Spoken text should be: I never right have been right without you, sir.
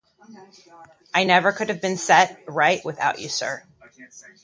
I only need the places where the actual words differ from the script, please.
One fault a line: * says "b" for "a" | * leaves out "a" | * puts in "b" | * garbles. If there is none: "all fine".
* says "could" for "right"
* puts in "set"